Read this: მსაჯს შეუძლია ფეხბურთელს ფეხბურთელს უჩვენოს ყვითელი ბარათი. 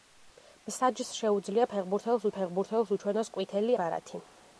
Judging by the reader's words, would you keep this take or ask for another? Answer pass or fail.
pass